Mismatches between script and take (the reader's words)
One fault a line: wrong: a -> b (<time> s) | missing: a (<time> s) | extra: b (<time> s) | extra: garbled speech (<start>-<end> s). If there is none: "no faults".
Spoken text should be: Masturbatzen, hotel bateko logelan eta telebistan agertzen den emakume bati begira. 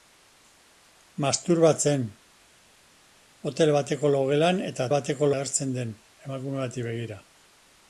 wrong: telebistan -> bateko (4.9 s)